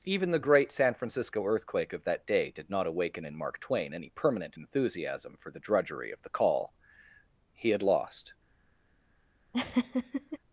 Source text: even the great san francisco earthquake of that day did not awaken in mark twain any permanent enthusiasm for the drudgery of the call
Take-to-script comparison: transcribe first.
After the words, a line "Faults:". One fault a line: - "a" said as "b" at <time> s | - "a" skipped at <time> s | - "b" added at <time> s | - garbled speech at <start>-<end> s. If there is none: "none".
even the great san francisco earthquake of that day did not awaken in mark twain any permanent enthusiasm for the drudgery of the call he had lost
Faults:
- "he had lost" added at 7.5 s